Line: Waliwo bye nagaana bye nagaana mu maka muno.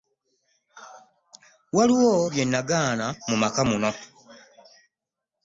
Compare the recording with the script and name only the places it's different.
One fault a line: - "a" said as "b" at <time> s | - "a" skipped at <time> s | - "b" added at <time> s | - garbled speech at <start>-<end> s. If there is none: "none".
- "bye nagaana" skipped at 3.1 s